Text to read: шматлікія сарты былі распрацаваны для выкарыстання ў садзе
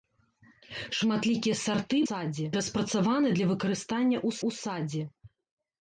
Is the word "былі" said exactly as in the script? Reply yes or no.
no